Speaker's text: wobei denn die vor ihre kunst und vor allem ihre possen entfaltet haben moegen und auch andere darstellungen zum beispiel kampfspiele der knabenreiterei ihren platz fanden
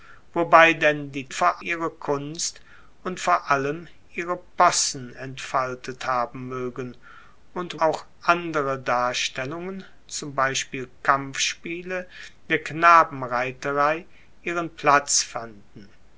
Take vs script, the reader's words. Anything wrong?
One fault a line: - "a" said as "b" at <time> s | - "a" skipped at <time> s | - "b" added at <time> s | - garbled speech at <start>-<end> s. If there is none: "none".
none